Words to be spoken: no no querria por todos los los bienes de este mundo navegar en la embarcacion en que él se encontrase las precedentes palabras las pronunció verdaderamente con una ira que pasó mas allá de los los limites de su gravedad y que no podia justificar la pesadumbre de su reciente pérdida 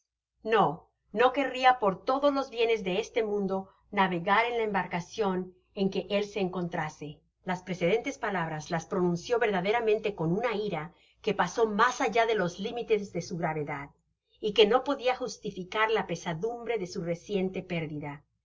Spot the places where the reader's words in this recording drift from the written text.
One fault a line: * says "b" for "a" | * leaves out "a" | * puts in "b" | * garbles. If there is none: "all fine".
* leaves out "los"
* leaves out "los"